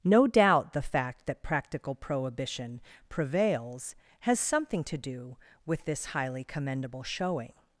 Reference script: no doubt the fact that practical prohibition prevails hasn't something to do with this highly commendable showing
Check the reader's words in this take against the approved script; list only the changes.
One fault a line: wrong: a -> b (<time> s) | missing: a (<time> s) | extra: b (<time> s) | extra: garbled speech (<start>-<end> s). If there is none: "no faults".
wrong: hasn't -> has (4.2 s)